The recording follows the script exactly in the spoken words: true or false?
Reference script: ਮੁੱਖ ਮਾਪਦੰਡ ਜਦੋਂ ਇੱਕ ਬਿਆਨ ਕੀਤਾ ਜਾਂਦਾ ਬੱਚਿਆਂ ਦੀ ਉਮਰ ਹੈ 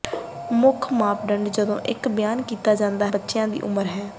true